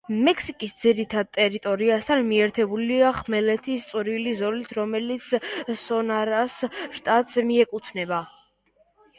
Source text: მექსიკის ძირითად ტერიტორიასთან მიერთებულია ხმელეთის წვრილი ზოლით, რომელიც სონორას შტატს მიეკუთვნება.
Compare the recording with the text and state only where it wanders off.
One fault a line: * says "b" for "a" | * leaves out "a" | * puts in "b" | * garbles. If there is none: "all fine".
all fine